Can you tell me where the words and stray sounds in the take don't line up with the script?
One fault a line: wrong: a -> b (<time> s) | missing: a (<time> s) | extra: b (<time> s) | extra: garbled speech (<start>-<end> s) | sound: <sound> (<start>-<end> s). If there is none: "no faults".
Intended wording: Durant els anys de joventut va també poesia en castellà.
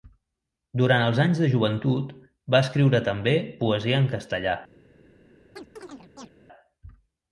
extra: escriure (2.7 s)
sound: chirp (5.6-6.3 s)